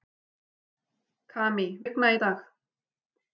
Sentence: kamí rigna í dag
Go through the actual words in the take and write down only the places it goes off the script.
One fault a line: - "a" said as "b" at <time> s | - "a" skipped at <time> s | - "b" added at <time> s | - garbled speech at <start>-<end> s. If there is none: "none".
none